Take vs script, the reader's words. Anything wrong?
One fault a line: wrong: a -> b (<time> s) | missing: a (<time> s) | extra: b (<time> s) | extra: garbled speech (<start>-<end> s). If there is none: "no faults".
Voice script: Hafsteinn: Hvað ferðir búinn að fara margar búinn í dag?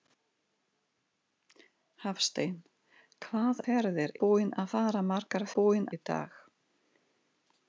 no faults